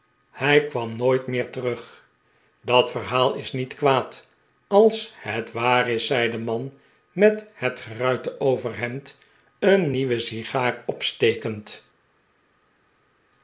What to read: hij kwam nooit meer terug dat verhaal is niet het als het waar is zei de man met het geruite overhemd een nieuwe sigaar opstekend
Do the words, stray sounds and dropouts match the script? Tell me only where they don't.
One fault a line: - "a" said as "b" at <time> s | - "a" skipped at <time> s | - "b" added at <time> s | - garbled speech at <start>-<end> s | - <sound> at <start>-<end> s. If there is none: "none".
- "het" said as "kwaad" at 3.8 s